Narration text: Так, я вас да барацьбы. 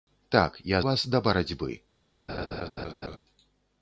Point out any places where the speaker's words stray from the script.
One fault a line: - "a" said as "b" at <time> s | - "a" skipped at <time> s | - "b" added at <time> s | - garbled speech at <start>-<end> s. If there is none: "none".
none